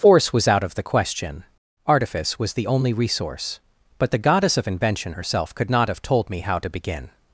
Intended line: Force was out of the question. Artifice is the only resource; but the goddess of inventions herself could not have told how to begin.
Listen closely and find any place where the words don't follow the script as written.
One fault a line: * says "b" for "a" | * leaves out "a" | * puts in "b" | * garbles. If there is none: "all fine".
* says "was" for "is"
* says "invention" for "inventions"
* puts in "me"